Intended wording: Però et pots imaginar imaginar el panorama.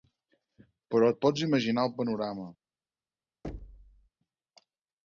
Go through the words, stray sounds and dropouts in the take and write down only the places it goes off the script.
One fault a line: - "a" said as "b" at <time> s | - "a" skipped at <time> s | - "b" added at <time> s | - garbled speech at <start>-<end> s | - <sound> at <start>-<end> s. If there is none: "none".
- "imaginar" skipped at 1.9 s
- thud at 3.4-4.1 s